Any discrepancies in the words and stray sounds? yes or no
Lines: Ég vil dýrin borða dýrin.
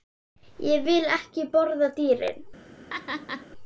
yes